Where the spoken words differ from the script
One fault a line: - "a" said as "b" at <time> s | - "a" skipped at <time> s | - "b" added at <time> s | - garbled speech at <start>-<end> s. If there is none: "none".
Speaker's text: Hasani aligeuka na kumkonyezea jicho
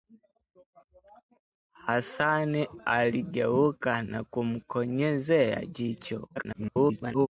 - garbled speech at 6.4-7.3 s